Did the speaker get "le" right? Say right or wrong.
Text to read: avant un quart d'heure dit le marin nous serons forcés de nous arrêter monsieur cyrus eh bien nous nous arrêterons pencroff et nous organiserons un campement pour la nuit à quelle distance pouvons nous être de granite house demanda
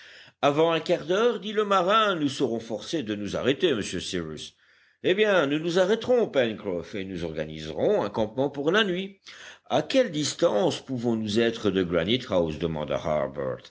right